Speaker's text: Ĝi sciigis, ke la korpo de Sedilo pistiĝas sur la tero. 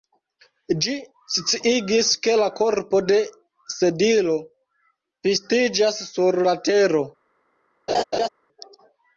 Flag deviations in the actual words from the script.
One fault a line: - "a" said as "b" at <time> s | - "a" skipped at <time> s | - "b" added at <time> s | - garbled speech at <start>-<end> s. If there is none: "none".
none